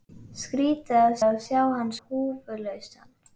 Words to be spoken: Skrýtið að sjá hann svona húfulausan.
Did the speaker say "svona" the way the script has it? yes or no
no